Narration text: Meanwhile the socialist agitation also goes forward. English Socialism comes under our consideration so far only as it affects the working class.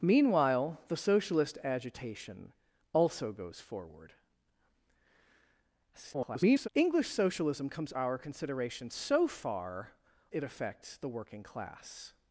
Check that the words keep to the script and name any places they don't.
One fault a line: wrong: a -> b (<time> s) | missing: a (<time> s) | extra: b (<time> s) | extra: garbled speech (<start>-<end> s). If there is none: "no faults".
extra: garbled speech (5.9-6.7 s)
missing: under (7.9 s)
missing: only as (9.9 s)